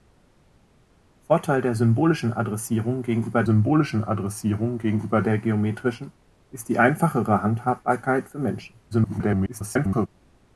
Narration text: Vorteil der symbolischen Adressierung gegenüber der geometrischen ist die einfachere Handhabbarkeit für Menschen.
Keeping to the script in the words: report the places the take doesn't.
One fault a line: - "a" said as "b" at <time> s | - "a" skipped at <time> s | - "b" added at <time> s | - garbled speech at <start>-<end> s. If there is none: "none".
- "symbolischen Adressierung gegenüber" added at 3.4 s
- garbled speech at 8.9-10.1 s